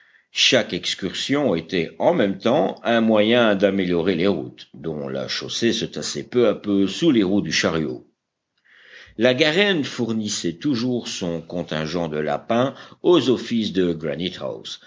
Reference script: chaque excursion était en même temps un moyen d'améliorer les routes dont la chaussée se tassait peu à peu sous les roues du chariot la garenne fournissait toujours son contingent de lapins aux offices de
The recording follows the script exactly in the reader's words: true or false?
true